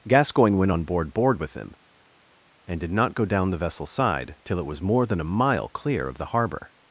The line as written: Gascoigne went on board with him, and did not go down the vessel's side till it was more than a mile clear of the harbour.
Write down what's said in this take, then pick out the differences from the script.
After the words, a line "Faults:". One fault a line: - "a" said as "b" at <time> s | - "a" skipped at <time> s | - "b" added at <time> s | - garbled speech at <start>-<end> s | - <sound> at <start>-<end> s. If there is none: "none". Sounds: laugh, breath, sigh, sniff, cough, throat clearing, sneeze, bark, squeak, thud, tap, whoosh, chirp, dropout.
Gascoigne went on board board with him, and did not go down the vessel's side till it was more than a mile clear of the harbour.
Faults:
- "board" added at 1.1 s